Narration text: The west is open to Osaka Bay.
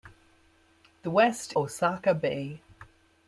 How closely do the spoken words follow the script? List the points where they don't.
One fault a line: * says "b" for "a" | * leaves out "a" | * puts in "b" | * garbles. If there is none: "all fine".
* leaves out "is open to"